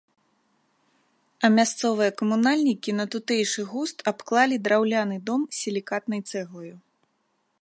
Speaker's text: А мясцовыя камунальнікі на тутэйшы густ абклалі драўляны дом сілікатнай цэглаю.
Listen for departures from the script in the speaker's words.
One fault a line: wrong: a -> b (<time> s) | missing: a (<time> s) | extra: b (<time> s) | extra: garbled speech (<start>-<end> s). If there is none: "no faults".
no faults